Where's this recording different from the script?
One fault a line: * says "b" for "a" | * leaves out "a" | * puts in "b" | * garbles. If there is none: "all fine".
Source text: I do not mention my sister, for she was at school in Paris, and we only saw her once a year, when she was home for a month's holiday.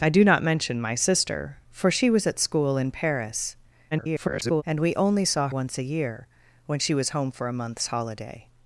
* garbles
* leaves out "her"